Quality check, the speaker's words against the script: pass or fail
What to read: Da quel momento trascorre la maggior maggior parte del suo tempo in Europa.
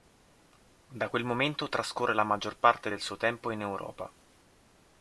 fail